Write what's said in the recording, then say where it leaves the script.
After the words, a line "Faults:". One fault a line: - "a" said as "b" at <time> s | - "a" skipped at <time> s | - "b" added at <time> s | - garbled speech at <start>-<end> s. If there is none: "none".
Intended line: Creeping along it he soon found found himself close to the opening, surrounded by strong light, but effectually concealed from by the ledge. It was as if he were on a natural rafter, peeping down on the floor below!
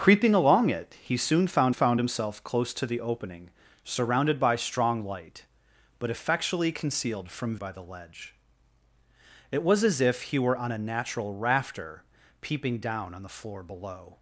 Creeping along it he soon found found himself close to the opening, surrounded by strong light, but effectually concealed from by the ledge. It was as if he were on a natural rafter, peeping down on the floor below!
Faults:
none